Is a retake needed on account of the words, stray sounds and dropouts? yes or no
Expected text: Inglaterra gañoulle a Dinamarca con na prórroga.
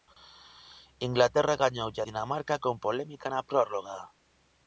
yes